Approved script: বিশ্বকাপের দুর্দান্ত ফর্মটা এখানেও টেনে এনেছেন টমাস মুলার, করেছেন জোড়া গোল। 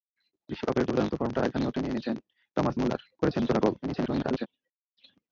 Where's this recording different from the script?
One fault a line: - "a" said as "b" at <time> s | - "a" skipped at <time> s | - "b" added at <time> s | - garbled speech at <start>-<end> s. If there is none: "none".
- garbled speech at 3.8-4.5 s